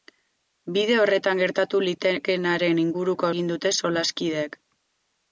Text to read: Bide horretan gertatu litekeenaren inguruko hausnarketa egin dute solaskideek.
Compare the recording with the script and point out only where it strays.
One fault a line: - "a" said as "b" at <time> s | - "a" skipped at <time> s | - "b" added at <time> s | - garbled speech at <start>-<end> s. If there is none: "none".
- "hausnarketa" skipped at 3.3 s